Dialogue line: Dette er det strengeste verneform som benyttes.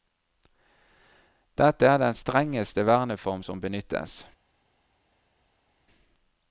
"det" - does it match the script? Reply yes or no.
no